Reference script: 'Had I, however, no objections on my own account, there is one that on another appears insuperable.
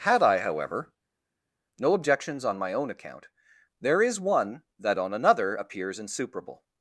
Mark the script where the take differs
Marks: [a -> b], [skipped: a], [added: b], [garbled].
'Had I, however, no objections on my own account, there is one that on another appears insuperable.